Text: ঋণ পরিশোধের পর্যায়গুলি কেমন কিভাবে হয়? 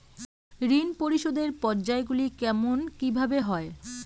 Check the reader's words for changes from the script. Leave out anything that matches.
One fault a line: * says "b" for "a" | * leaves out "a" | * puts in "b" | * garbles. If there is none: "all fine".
all fine